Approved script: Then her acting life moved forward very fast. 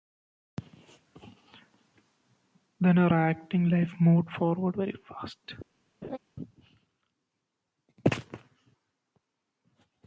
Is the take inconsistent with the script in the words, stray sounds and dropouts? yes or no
yes